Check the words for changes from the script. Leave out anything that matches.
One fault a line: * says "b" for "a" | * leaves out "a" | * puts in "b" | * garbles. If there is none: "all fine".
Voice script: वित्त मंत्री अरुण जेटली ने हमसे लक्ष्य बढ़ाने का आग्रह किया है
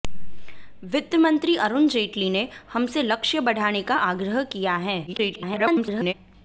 * garbles